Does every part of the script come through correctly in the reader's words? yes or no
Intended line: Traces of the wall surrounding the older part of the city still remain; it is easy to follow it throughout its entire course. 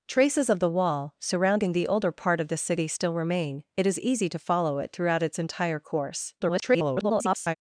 no